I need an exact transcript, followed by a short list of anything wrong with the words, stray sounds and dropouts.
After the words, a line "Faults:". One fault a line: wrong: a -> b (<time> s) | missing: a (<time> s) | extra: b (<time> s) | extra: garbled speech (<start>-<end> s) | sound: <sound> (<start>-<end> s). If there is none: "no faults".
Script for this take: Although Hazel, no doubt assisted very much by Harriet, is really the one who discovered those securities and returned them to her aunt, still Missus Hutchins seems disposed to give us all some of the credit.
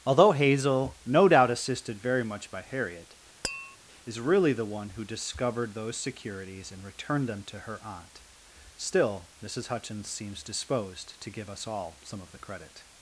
Although Hazel, no doubt assisted very much by Harriet, is really the one who discovered those securities and returned them to her aunt, still Missus Hutchins seems disposed to give us all some of the credit.
Faults:
sound: tap (3.4-3.8 s)